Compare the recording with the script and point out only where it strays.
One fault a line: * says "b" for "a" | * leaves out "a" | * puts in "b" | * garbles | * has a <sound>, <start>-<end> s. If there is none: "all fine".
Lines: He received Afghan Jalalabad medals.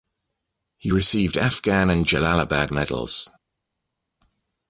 * puts in "and"